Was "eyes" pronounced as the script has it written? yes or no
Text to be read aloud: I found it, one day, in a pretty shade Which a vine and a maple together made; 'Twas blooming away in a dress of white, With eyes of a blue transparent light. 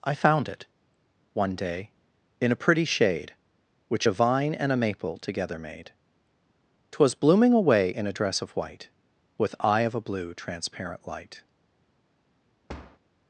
no